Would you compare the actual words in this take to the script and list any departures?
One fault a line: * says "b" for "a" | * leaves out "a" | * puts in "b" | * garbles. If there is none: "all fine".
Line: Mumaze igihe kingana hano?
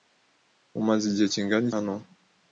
all fine